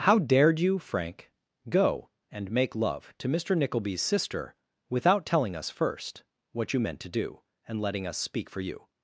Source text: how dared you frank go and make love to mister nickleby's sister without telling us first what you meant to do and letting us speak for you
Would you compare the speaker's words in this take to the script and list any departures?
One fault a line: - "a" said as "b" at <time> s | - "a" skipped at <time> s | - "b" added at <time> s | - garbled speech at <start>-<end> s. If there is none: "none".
none